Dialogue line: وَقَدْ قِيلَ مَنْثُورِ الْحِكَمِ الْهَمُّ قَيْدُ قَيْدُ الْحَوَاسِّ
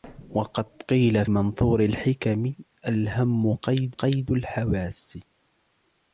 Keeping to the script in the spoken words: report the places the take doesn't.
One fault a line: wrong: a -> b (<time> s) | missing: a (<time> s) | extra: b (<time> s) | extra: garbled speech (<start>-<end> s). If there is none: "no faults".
no faults